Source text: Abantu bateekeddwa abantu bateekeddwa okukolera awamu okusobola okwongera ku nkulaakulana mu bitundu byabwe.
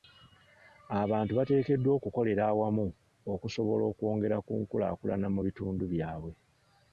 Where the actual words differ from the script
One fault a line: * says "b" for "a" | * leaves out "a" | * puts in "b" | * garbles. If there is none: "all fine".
* leaves out "abantu bateekeddwa"